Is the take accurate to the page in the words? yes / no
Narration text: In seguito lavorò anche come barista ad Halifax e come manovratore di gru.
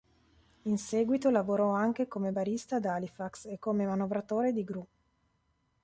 yes